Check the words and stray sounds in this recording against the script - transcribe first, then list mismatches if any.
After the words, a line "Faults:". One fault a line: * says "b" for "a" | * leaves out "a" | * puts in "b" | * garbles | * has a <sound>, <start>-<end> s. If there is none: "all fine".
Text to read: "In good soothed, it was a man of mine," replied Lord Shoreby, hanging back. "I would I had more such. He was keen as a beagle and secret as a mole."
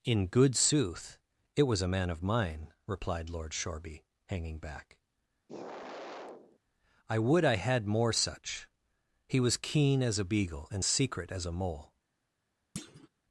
"In good sooth, it was a man of mine," replied Lord Shoreby, hanging back. "I would I had more such. He was keen as a beagle and secret as a mole."
Faults:
* says "sooth" for "soothed"
* has a sigh, 5.5-6.6 s
* has a thud, 12.8-13.1 s